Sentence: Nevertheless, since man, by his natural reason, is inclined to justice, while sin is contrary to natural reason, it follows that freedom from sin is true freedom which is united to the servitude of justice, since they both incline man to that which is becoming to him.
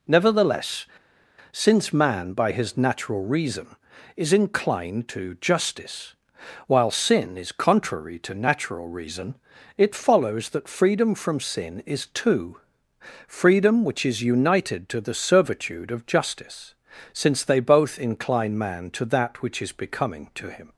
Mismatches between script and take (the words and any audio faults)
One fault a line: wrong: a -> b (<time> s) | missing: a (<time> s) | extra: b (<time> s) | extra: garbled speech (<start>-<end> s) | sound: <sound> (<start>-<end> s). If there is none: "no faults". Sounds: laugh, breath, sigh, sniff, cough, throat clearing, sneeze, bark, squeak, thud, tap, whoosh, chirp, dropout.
wrong: true -> two (12.1 s)